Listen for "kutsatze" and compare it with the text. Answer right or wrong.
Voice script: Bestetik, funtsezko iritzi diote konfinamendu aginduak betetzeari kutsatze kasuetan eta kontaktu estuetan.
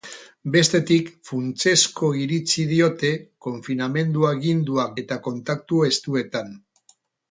wrong